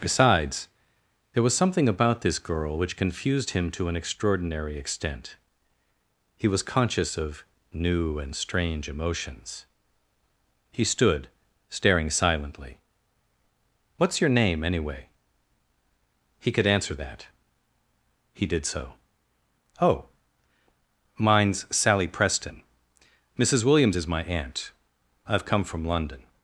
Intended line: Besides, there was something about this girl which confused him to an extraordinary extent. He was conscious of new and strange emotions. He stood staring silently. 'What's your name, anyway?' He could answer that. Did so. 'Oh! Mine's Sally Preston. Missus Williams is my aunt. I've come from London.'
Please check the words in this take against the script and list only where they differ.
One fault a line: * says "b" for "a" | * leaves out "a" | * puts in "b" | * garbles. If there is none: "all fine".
* puts in "He"